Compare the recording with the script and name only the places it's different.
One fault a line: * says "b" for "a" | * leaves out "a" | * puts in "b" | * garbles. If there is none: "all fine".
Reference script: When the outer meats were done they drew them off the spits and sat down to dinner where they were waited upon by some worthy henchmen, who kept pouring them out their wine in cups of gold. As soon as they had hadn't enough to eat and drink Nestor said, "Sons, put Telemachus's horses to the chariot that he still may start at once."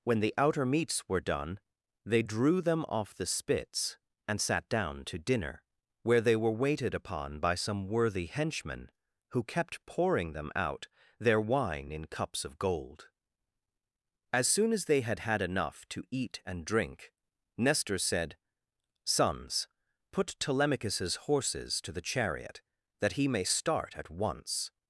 * says "had" for "hadn't"
* leaves out "still"